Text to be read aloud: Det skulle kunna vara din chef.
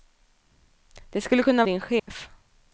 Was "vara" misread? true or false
true